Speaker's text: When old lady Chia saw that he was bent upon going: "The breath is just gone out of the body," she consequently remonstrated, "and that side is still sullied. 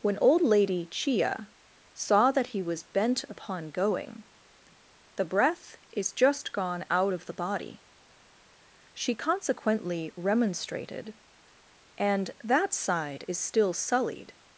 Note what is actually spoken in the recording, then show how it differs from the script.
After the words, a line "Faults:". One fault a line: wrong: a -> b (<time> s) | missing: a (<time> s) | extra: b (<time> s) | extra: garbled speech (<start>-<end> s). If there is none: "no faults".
When old lady Chia saw that he was bent upon going: "The breath is just gone out of the body," she consequently remonstrated, "and that side is still sullied.
Faults:
no faults